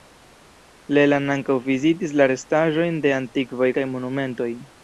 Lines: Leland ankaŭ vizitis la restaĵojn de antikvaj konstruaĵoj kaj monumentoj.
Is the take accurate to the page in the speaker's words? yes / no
no